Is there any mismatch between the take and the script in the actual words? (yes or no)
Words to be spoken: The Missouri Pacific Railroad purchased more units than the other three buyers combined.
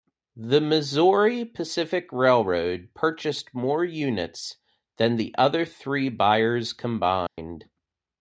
no